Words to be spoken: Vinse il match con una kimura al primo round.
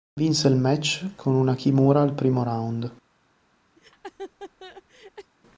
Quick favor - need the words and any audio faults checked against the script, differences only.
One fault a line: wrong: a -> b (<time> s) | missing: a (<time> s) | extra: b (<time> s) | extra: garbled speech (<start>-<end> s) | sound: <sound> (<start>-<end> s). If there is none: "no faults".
sound: laugh (3.8-5.3 s)